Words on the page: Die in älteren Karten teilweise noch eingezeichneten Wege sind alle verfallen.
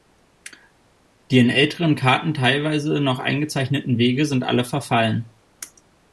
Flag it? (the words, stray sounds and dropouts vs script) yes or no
no